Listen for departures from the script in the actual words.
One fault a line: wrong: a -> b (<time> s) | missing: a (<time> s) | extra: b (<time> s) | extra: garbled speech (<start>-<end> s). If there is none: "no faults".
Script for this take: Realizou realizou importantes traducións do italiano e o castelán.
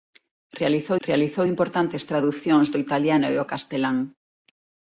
no faults